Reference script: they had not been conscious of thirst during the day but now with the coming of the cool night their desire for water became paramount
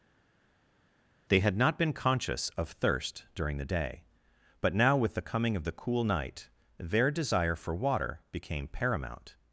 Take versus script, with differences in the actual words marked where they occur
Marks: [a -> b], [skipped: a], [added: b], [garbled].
they had not been conscious of thirst during the day but now with the coming of the cool night their desire for water became paramount